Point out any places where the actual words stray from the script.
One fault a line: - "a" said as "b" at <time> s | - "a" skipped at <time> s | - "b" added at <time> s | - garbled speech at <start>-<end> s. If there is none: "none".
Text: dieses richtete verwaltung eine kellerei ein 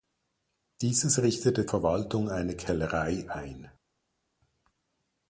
none